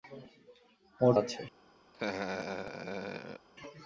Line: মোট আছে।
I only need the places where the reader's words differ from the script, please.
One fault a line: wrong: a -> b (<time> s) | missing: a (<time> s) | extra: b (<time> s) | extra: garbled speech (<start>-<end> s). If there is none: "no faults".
no faults